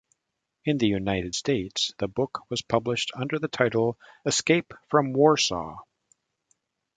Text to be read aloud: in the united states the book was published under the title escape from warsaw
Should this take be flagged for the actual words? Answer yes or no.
no